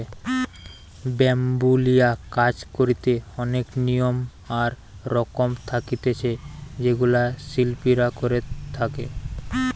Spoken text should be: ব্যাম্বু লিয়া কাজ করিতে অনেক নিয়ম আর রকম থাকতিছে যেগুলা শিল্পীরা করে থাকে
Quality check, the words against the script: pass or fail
pass